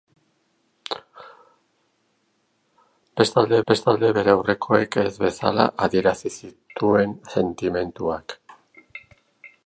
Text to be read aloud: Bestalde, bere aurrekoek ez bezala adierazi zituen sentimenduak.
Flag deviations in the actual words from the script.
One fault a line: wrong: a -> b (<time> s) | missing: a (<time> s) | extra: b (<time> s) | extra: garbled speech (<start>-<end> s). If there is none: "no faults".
extra: bestalde (3.7 s)